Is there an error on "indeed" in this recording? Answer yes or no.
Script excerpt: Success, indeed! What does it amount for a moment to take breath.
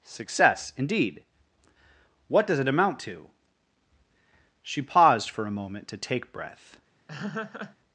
no